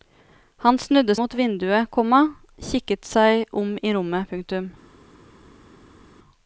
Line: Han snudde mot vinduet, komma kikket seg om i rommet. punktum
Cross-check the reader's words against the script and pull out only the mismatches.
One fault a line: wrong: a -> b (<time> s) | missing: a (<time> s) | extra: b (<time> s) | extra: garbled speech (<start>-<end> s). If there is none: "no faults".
no faults